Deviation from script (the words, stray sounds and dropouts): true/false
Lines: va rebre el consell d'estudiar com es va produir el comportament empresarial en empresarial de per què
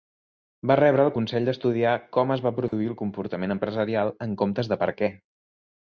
true